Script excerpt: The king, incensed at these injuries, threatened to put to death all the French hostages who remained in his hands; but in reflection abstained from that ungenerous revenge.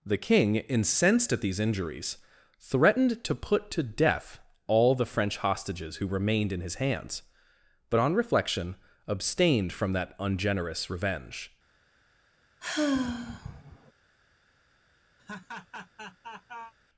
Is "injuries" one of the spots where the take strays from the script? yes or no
no